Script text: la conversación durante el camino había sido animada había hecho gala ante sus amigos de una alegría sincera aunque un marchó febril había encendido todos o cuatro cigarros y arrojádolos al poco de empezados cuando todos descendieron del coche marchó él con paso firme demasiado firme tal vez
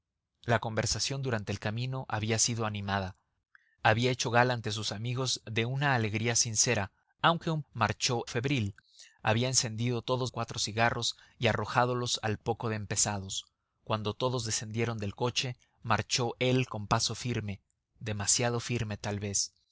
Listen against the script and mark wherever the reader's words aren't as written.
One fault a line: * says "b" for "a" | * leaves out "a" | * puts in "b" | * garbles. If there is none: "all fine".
all fine